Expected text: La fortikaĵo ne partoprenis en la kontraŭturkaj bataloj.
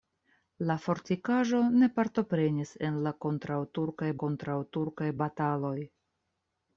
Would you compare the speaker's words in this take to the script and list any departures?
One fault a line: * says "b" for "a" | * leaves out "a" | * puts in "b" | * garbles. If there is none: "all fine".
* puts in "kontraŭturkaj"